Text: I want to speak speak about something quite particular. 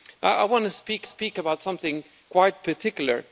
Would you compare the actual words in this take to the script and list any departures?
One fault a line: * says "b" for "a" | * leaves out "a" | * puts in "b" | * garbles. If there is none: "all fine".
all fine